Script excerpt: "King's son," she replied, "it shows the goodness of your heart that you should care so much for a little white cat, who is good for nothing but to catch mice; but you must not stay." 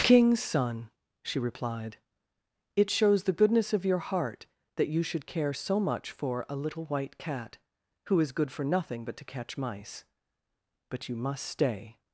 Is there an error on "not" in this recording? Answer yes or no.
yes